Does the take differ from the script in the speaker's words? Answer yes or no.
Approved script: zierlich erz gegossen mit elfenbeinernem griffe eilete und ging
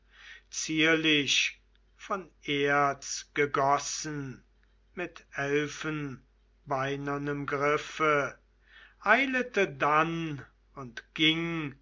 yes